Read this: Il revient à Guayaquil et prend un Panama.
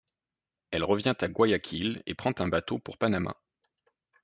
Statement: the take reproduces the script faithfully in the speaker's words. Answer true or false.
false